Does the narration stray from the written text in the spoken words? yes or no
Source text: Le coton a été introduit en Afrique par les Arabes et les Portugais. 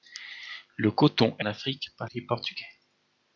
yes